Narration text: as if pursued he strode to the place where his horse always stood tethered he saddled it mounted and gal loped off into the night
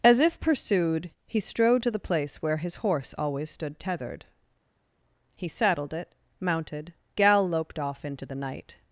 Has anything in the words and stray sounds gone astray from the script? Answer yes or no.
yes